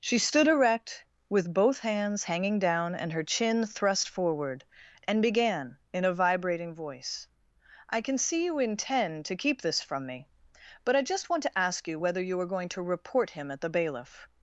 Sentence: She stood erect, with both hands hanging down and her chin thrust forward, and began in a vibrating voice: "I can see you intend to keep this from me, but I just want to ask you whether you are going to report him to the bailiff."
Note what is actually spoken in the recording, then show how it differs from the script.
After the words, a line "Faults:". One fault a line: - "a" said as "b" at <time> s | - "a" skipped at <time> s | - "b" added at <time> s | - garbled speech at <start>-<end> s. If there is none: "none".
She stood erect, with both hands hanging down and her chin thrust forward, and began in a vibrating voice: "I can see you intend to keep this from me, but I just want to ask you whether you are going to report him at the bailiff."
Faults:
- "to" said as "at" at 13.5 s